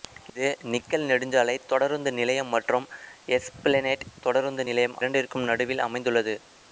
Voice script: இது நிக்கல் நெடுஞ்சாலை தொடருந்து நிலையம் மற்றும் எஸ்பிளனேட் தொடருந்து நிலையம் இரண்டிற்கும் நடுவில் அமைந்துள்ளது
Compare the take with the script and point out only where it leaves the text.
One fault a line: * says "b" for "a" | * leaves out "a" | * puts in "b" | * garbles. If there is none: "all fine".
all fine